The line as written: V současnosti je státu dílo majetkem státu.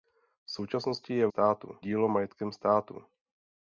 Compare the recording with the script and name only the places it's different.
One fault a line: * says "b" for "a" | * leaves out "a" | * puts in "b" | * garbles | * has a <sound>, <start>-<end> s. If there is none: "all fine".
all fine